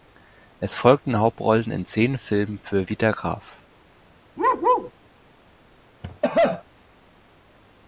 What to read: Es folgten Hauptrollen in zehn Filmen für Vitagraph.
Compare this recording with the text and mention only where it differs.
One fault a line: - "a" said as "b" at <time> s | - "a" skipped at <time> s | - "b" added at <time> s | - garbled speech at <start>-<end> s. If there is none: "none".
none